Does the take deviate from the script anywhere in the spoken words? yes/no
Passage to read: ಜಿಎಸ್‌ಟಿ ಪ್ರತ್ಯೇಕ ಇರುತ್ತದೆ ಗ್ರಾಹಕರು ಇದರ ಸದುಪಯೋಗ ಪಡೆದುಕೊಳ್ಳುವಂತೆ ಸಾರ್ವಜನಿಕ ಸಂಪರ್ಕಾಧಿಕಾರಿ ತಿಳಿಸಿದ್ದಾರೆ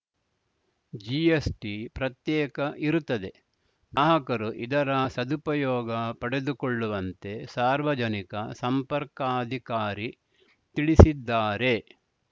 no